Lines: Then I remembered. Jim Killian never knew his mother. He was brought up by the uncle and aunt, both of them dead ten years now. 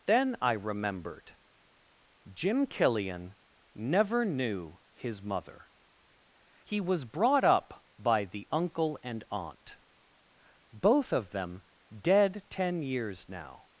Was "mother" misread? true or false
false